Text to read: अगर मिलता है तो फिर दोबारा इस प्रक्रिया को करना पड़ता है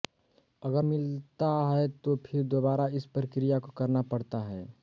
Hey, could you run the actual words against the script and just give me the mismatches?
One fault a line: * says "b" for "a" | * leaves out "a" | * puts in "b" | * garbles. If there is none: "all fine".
all fine